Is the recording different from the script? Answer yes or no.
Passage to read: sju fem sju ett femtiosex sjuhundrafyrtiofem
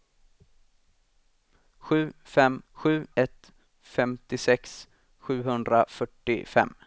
no